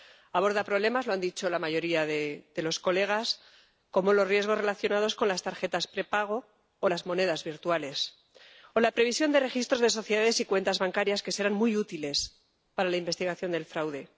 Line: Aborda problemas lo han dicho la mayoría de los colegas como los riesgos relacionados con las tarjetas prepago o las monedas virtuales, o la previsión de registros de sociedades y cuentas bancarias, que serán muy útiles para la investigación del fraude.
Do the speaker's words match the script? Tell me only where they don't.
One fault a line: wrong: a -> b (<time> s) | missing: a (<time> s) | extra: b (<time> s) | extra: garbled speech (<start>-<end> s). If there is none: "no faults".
no faults